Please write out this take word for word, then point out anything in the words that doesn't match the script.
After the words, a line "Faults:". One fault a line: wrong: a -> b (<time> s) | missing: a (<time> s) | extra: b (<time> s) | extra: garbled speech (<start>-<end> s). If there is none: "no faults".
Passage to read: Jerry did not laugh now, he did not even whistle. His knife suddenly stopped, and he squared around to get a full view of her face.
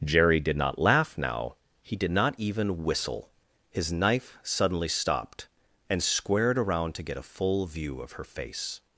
Jerry did not laugh now, he did not even whistle. His knife suddenly stopped, and squared around to get a full view of her face.
Faults:
missing: he (6.0 s)